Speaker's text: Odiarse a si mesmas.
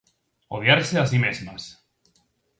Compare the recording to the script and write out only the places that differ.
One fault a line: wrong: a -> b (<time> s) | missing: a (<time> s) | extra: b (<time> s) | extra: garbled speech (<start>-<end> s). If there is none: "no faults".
no faults